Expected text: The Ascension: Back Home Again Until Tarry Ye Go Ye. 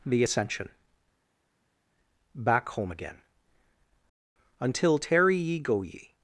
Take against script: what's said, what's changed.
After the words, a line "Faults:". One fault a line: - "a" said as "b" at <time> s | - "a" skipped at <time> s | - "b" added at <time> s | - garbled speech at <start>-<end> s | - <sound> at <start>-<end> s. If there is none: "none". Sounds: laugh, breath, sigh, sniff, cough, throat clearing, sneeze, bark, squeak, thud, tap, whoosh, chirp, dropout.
The Ascension: Back Home Again Until Tarry Ye Go Ye.
Faults:
none